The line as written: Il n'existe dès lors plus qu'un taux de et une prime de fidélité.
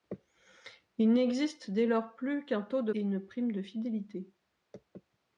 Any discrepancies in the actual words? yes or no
no